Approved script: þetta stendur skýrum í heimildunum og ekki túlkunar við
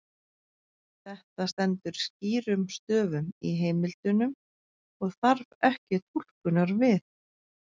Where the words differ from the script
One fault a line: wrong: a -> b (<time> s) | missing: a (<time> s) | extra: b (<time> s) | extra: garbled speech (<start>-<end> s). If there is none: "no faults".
extra: stöfum (2.8 s)
extra: þarf (5.2 s)